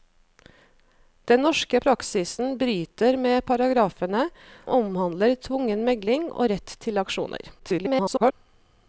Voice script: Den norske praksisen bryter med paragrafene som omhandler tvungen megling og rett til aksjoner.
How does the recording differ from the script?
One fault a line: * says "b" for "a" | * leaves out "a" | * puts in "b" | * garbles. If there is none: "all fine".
* leaves out "som"
* garbles